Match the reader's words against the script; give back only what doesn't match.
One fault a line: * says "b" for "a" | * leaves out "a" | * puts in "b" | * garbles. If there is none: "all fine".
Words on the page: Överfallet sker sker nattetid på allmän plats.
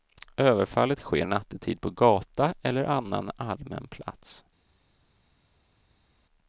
* leaves out "sker"
* puts in "gata eller annan"